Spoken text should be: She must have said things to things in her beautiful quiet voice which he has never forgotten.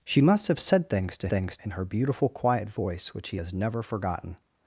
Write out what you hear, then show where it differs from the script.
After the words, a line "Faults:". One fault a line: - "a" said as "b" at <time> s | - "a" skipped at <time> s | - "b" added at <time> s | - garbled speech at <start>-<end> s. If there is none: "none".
She must have said things to things in her beautiful quiet voice which he has never forgotten.
Faults:
none